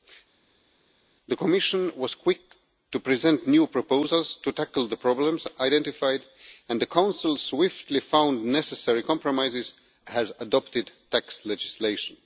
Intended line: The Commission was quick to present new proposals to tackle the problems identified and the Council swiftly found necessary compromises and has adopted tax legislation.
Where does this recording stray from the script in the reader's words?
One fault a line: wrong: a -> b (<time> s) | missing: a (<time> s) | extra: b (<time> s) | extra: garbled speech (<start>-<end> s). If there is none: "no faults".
missing: and (9.7 s)